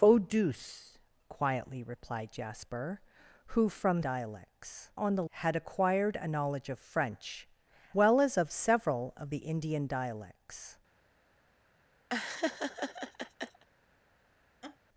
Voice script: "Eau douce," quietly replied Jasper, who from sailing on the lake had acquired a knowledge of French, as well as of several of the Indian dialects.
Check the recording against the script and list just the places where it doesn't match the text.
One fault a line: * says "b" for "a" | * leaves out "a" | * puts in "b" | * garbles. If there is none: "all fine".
* says "dialects" for "sailing"
* leaves out "lake"
* leaves out "as"